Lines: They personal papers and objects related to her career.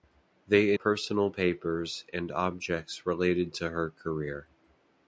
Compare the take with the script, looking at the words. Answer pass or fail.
pass